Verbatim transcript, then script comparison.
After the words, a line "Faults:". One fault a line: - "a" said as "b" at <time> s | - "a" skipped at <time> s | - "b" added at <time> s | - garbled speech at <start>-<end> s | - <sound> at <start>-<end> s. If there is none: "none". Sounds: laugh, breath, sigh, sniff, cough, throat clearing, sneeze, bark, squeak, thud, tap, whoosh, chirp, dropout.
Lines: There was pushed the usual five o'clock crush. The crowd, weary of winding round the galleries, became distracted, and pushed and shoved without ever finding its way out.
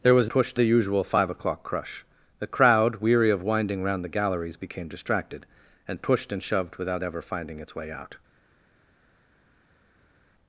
There was pushed the usual five o'clock crush. The crowd, weary of winding round the galleries, became distracted, and pushed and shoved without ever finding its way out.
Faults:
none